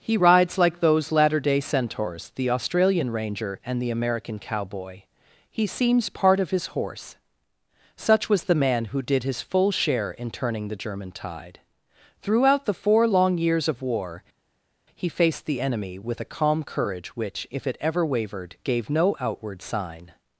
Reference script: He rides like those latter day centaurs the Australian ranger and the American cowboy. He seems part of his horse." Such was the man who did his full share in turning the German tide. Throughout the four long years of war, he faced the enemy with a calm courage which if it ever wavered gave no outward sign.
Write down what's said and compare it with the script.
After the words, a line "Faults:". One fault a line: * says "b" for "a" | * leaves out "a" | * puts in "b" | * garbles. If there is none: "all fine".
He rides like those latter day centaurs the Australian ranger and the American cowboy. He seems part of his horse." Such was the man who did his full share in turning the German tide. Throughout the four long years of war, he faced the enemy with a calm courage which if it ever wavered gave no outward sign.
Faults:
all fine